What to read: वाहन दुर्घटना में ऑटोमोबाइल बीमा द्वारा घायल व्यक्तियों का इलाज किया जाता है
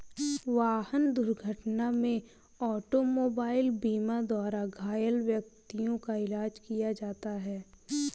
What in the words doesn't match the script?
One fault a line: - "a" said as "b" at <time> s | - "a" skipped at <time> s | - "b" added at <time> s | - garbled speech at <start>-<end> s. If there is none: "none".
none